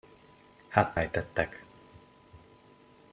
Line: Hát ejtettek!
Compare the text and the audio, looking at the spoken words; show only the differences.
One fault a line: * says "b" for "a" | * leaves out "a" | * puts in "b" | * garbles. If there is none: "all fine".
all fine